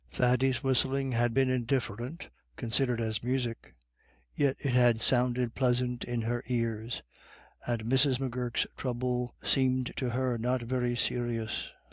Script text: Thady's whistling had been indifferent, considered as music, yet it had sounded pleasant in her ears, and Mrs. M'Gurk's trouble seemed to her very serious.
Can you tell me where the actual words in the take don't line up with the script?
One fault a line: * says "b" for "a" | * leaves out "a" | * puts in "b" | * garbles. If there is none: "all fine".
* puts in "not"